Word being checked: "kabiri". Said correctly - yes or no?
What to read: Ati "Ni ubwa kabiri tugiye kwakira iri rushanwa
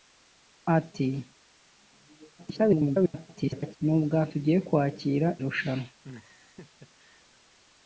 no